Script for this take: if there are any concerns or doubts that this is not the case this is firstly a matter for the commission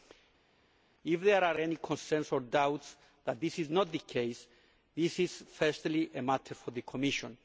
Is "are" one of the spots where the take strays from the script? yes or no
no